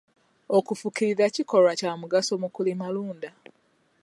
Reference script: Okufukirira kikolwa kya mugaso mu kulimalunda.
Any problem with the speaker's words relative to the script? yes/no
no